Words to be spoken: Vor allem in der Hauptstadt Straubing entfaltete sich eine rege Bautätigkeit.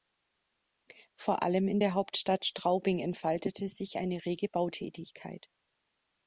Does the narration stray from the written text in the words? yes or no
no